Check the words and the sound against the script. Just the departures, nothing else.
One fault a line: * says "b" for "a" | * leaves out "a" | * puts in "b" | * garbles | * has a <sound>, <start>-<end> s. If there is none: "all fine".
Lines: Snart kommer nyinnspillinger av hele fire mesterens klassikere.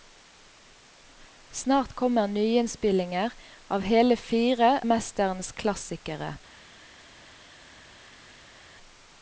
all fine